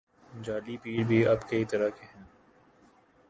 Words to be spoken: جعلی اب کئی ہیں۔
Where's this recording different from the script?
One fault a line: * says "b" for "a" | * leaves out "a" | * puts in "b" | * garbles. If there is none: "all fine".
* puts in "پیر بھی"
* puts in "طرح کے"